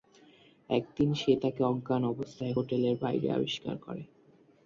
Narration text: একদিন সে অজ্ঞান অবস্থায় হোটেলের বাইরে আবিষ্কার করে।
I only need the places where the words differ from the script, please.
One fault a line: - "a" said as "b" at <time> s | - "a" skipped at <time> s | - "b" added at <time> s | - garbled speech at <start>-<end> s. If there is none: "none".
- "তাকে" added at 1.4 s